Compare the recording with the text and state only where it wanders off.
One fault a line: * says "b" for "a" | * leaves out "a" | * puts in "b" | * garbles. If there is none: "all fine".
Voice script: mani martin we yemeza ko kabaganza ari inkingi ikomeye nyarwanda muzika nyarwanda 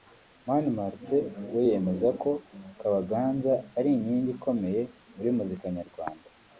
* says "muri" for "nyarwanda"